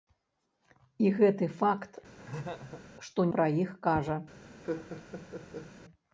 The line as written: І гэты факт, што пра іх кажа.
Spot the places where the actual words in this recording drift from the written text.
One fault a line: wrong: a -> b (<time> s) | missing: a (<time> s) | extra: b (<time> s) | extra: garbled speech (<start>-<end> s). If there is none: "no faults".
no faults